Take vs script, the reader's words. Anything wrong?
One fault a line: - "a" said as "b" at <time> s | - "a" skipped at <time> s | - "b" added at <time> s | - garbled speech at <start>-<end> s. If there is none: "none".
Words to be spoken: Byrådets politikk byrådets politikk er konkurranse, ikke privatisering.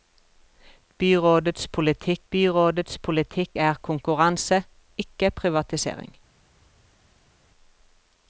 none